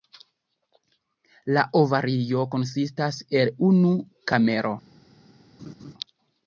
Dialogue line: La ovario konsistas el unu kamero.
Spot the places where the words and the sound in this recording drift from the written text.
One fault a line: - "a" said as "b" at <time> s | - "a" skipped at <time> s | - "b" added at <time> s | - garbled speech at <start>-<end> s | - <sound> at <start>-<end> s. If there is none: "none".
- laugh at 5.6-5.9 s